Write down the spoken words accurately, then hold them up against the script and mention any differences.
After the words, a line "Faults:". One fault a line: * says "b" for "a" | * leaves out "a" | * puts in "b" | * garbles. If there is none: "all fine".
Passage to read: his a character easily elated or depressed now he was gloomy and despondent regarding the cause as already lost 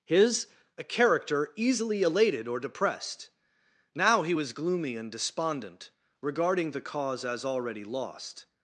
his a character easily elated or depressed now he was gloomy and despondent regarding the cause as already lost
Faults:
all fine